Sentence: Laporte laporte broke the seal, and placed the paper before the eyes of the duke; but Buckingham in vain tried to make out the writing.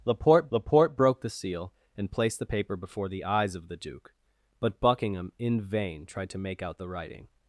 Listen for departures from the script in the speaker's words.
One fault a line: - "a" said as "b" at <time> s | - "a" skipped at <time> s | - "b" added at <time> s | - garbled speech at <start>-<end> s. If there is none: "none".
none